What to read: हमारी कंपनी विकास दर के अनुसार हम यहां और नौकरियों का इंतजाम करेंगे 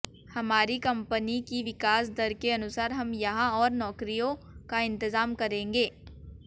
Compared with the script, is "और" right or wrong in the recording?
right